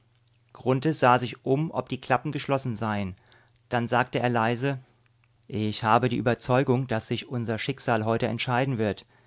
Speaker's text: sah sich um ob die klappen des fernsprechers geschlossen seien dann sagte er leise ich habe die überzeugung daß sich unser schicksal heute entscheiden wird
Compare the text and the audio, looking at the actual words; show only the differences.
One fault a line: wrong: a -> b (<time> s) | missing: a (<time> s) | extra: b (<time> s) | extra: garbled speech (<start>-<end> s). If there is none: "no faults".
missing: des fernsprechers (2.3 s)